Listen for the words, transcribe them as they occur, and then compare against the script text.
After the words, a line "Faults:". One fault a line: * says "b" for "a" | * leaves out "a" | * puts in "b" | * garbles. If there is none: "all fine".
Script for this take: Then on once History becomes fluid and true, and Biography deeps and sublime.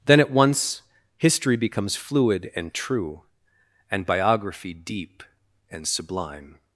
Then at once History becomes fluid and true, and Biography deep and sublime.
Faults:
* says "at" for "on"
* says "deep" for "deeps"